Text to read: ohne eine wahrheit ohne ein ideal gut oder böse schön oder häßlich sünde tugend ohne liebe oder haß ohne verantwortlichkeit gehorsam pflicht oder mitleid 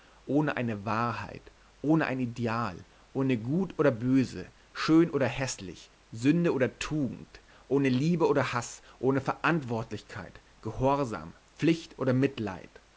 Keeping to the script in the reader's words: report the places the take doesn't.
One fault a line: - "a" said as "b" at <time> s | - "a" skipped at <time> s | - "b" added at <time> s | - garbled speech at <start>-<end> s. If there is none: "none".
- "ohne" added at 3.1 s
- "oder" added at 6.5 s